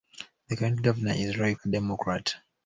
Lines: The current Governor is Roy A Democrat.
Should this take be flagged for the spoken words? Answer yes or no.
no